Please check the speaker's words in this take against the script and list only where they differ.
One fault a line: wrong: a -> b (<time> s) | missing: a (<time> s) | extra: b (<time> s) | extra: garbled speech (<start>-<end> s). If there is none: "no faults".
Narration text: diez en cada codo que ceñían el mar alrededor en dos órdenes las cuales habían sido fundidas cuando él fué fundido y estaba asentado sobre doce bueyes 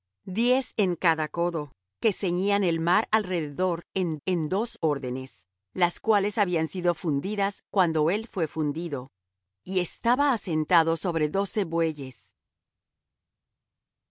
extra: en (4.2 s)